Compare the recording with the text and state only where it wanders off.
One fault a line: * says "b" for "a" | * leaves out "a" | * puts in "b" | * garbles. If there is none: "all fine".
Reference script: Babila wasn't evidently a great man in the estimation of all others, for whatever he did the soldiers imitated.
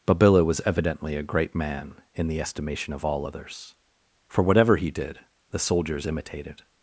* says "was" for "wasn't"